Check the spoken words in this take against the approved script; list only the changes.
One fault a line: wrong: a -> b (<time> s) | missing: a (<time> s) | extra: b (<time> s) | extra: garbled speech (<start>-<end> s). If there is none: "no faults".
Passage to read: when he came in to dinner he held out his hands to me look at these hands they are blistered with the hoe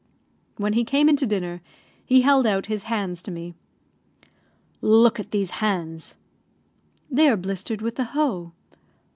no faults